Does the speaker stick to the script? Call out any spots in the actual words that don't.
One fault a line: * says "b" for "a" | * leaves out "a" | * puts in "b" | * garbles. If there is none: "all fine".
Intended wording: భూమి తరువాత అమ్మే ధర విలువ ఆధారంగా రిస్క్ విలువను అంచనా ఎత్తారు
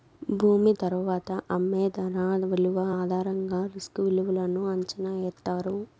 all fine